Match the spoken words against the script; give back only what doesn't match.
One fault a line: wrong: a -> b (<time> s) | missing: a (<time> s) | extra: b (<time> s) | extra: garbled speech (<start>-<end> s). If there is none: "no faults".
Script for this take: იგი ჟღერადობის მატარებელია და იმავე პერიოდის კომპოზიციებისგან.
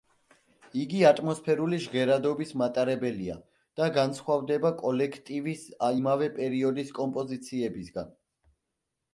extra: ატმოსფერული (1.1 s)
extra: განსხვავდება კოლექტივის (4.0 s)